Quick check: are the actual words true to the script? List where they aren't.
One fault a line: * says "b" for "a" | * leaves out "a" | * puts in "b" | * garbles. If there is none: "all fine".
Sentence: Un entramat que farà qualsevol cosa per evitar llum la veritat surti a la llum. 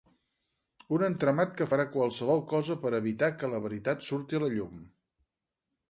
* says "que" for "llum"